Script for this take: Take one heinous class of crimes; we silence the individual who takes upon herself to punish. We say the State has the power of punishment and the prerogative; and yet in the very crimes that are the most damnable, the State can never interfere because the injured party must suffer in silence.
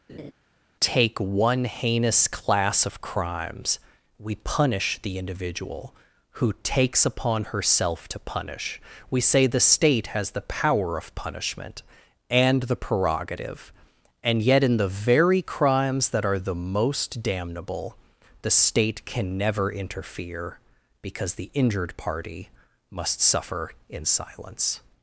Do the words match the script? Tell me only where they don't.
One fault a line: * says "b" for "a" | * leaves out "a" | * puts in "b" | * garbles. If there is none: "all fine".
* says "punish" for "silence"